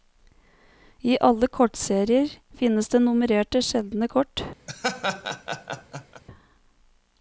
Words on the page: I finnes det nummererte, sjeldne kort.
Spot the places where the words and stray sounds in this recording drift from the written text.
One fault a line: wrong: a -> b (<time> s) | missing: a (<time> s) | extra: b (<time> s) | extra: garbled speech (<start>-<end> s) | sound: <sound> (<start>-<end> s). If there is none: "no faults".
extra: alle kortserier (1.3 s)
sound: laugh (4.7-6.2 s)